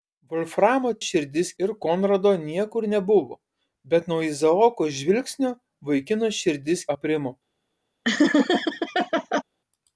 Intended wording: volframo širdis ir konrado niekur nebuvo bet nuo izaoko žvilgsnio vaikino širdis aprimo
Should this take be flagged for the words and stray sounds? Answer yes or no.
yes